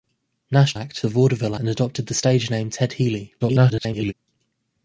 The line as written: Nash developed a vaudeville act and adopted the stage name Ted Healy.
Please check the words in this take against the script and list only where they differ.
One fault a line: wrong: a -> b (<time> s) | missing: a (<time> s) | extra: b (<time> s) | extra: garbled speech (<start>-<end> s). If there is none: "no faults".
wrong: developed -> act (0.7 s)
missing: act (1.5 s)
extra: garbled speech (3.4-4.1 s)